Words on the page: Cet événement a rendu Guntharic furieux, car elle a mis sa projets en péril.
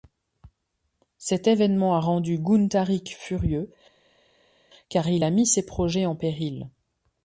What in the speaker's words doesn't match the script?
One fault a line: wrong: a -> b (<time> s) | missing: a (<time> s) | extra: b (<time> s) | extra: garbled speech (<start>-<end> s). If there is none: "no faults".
wrong: elle -> il (5.1 s)
wrong: sa -> ses (5.5 s)